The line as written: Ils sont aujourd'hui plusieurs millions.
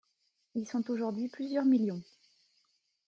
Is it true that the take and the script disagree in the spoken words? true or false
false